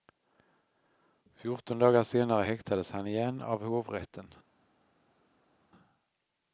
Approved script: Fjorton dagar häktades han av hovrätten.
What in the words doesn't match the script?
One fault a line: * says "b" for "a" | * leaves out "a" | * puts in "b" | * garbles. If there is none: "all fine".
* puts in "senare"
* puts in "igen"